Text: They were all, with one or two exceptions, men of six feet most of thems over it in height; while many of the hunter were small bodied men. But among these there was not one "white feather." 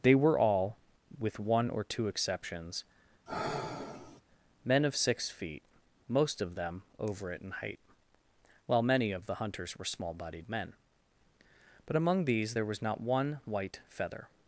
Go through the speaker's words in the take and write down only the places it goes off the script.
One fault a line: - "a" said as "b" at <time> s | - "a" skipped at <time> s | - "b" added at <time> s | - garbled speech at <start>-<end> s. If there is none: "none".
- "thems" said as "them" at 6.6 s
- "hunter" said as "hunters" at 9.4 s